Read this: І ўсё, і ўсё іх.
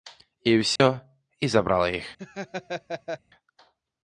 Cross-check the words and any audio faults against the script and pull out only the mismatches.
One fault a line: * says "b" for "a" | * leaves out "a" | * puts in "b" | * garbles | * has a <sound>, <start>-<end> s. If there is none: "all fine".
* has a dropout, 0.8-0.8 s
* says "забрала" for "ўсё"
* has a laugh, 2.2-3.2 s